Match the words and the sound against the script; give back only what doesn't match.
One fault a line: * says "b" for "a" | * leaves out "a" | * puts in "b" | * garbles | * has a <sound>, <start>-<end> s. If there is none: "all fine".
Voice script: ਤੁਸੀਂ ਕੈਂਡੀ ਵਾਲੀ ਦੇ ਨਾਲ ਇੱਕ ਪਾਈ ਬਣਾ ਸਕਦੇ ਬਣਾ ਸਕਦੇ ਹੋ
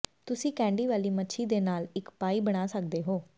* puts in "ਮੱਛੀ"
* leaves out "ਬਣਾ ਸਕਦੇ"